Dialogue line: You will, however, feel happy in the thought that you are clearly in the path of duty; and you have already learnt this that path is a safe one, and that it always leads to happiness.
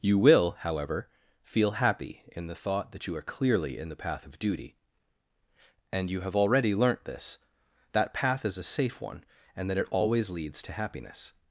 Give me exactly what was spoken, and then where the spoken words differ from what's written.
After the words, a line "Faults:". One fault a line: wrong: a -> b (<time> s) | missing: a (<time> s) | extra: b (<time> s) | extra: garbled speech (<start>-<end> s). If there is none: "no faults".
You will, however, feel happy in the thought that you are clearly in the path of duty; and you have already learnt this that path is a safe one, and that it always leads to happiness.
Faults:
no faults